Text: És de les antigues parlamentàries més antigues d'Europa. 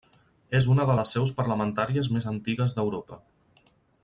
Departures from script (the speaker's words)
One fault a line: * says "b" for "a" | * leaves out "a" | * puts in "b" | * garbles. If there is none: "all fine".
* puts in "una"
* says "seus" for "antigues"